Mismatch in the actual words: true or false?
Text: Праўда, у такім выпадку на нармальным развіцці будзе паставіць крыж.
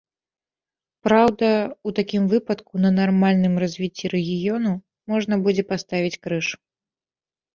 true